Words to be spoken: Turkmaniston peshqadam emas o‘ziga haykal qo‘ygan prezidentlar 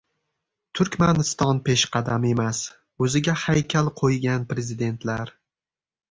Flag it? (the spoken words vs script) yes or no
no